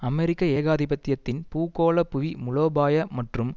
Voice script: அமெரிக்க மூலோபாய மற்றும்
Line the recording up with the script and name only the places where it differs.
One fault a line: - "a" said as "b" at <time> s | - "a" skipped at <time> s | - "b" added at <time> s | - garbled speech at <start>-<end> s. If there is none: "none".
- "ஏகாதிபத்தியத்தின் பூகோள புவி" added at 0.6 s